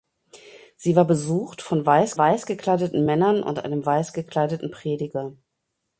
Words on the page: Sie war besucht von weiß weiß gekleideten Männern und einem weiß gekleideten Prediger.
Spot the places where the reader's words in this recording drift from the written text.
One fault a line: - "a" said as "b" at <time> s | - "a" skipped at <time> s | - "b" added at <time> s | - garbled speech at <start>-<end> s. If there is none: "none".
none